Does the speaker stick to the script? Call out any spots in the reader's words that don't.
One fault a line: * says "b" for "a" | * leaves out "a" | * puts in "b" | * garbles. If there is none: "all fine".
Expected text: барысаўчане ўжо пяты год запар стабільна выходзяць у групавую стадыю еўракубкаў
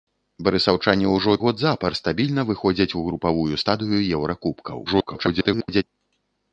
* leaves out "пяты"
* garbles